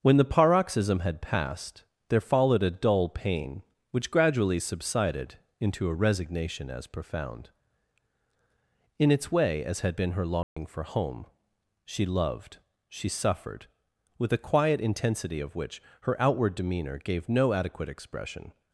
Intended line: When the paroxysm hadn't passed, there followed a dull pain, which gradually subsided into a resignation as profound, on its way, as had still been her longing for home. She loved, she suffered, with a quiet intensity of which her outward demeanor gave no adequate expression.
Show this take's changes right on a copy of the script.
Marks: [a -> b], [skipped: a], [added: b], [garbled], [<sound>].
When the paroxysm [hadn't -> had] passed, there followed a dull pain, which gradually subsided into a resignation as profound, [on -> in] its way, as had [skipped: still] been her longing [dropout] for home. She loved, she suffered, with a quiet intensity of which her outward demeanor gave no adequate expression.